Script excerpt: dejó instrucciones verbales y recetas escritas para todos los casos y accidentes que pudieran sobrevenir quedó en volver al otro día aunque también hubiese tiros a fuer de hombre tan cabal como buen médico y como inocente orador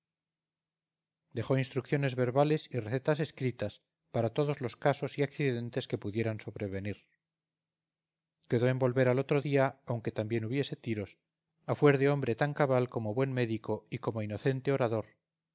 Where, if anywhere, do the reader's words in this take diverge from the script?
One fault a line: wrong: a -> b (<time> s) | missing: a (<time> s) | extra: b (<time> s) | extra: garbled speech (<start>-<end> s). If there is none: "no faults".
no faults